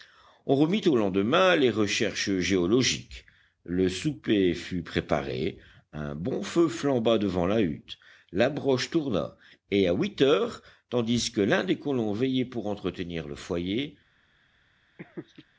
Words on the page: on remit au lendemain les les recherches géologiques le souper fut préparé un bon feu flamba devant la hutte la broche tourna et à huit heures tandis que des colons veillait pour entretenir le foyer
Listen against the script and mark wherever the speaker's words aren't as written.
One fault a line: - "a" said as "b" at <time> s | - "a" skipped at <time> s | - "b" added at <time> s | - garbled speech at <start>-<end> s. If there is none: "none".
- "les" skipped at 1.7 s
- "l'un" added at 11.4 s